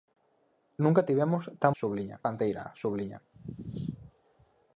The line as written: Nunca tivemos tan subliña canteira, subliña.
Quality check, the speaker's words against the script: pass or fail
pass